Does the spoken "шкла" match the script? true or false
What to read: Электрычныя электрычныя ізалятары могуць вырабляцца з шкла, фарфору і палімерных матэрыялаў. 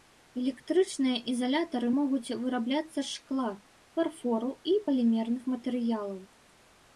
true